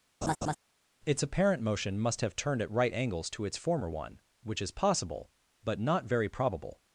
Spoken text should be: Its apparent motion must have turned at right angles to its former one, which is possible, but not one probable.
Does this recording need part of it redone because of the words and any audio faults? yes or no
yes